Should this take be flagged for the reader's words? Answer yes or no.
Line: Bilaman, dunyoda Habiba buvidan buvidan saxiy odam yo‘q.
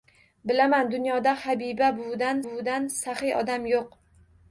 no